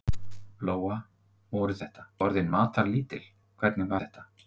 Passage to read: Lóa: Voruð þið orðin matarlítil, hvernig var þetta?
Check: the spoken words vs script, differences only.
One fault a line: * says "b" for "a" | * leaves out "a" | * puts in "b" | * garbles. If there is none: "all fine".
* says "þetta" for "þið"
* leaves out "var"